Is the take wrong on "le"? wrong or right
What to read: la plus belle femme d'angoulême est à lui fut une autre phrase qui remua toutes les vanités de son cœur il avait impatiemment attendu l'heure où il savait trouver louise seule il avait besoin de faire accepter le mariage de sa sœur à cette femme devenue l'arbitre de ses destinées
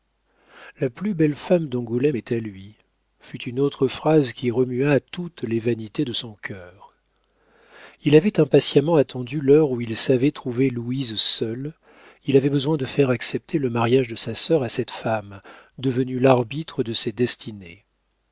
right